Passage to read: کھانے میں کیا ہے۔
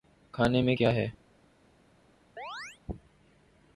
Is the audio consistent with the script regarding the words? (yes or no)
yes